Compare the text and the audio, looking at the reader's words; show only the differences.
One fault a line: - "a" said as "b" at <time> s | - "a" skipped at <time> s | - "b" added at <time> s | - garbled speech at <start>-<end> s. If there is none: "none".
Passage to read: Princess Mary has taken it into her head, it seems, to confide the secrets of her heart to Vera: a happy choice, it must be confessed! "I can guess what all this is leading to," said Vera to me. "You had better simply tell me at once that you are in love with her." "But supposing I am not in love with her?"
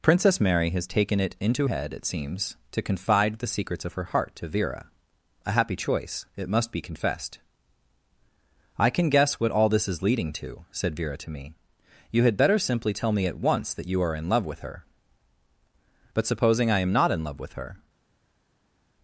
- "her" skipped at 1.7 s